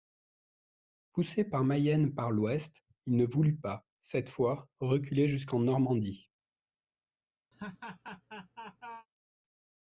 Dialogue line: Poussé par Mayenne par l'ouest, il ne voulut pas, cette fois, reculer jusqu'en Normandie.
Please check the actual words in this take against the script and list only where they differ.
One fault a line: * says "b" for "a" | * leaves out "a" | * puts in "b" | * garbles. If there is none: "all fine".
all fine